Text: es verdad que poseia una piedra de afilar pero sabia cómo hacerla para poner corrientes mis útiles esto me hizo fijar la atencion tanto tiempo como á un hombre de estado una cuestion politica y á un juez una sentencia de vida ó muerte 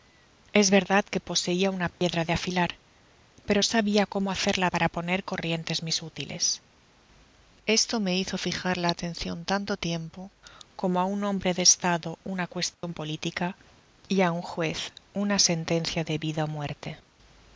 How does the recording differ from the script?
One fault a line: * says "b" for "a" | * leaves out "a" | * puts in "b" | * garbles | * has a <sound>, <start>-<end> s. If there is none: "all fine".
* has a dropout, 1.9-2.0 s
* has a dropout, 12.7-12.8 s